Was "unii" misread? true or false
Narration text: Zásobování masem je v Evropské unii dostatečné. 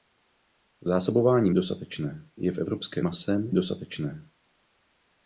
true